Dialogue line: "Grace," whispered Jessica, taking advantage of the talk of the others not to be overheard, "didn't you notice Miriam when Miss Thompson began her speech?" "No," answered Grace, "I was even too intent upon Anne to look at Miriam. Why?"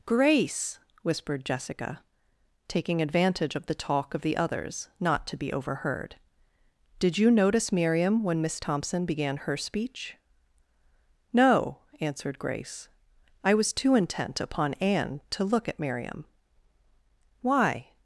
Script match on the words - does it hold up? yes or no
no